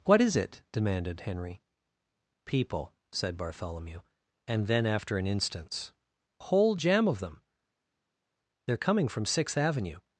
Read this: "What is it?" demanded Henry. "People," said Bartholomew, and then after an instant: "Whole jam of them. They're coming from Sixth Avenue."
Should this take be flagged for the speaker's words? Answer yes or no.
yes